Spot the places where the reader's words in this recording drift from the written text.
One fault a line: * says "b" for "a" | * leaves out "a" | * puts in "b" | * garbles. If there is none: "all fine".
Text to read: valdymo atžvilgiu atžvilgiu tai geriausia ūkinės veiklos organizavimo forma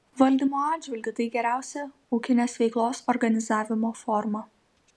* leaves out "atžvilgiu"